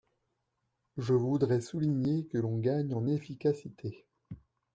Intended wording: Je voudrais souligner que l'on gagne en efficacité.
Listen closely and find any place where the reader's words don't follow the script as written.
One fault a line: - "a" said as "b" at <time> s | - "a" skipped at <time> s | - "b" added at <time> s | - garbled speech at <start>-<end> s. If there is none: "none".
none